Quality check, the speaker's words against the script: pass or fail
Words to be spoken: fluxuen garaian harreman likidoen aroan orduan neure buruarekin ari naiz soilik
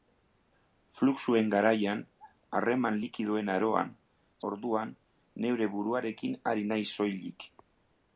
pass